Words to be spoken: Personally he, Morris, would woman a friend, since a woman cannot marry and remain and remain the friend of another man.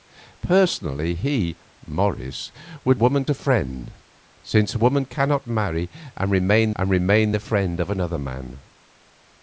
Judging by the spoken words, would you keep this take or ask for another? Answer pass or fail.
pass